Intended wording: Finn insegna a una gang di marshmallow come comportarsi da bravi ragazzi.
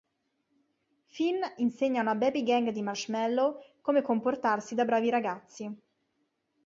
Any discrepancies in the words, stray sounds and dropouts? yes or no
yes